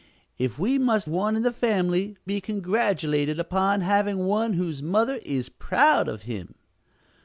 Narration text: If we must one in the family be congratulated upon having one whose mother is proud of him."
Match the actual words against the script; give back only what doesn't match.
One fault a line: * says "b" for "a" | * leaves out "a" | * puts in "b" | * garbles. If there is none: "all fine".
all fine